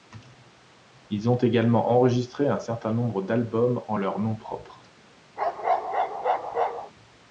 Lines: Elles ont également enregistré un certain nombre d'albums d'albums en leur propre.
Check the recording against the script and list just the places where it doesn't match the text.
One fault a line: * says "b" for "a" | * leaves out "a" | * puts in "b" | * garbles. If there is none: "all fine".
* says "Ils" for "Elles"
* leaves out "d'albums"
* puts in "nom"